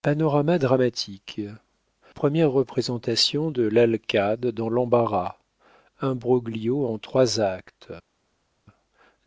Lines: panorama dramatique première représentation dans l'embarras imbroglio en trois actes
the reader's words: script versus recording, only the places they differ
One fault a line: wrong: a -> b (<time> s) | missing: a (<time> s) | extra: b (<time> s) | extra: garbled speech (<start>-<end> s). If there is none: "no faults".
extra: de l'alcade (3.5 s)